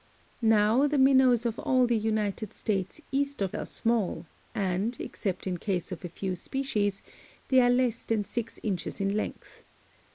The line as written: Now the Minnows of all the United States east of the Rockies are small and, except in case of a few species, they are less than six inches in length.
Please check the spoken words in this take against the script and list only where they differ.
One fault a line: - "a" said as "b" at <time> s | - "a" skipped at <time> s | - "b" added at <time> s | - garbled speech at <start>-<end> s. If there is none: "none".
- "the Rockies" skipped at 3.5 s